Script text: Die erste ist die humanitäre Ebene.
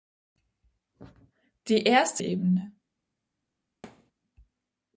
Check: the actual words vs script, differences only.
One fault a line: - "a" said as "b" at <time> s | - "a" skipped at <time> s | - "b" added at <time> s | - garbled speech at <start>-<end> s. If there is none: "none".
- "ist die humanitäre" skipped at 2.2 s